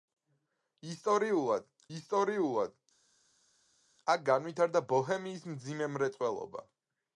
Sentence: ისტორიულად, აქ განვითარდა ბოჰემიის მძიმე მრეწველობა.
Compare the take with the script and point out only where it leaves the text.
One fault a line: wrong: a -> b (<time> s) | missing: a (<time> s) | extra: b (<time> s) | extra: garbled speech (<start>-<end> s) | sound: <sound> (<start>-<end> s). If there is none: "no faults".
extra: ისტორიულად (2.0 s)